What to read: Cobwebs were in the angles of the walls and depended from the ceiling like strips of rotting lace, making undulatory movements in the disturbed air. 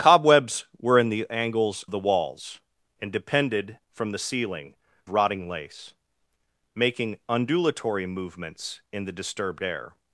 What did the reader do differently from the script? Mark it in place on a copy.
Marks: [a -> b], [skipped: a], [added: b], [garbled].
Cobwebs were in the angles [skipped: of] the walls and depended from the ceiling [skipped: like strips of] rotting lace, making undulatory movements in the disturbed air.